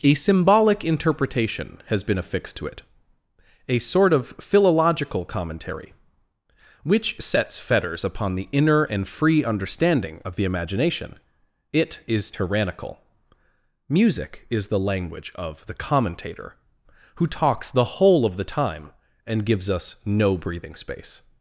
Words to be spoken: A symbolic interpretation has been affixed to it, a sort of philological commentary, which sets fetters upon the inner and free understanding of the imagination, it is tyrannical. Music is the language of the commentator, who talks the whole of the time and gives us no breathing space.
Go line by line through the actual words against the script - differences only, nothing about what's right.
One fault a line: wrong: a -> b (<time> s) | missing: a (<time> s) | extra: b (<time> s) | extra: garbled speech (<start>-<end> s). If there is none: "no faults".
no faults